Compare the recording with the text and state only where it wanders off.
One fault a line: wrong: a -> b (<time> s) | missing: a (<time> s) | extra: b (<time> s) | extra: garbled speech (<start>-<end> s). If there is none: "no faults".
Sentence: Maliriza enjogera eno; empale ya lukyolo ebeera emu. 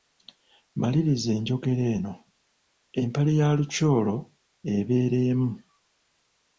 no faults